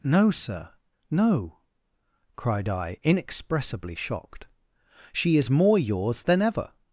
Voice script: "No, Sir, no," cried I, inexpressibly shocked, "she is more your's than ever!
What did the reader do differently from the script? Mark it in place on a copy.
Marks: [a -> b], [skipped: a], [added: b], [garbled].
"No, Sir, no," cried I, inexpressibly shocked, "she is more your's than ever!